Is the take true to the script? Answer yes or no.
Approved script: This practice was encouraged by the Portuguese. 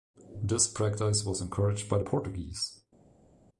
yes